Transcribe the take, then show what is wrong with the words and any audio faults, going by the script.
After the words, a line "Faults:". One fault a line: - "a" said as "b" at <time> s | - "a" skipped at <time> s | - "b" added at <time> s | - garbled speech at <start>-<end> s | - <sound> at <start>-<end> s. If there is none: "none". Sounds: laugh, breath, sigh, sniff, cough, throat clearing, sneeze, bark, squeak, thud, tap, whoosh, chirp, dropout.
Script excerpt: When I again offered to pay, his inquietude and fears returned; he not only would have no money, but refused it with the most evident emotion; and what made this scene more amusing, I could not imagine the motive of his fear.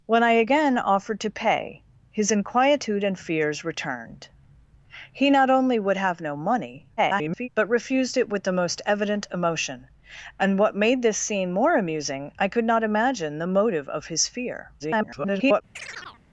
When I again offered to pay, his inquietude and fears returned; he not only would have no money, [garbled] but refused it with the most evident emotion; and what made this scene more amusing, I could not imagine the motive of his fear. [garbled]
Faults:
- garbled speech at 7.0-7.5 s
- garbled speech at 14.8-15.6 s
- chirp at 15.7-16.2 s